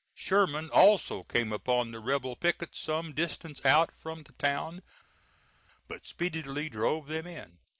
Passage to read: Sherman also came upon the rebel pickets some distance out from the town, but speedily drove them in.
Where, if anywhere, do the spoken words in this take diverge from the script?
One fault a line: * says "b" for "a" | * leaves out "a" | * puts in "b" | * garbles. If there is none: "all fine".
all fine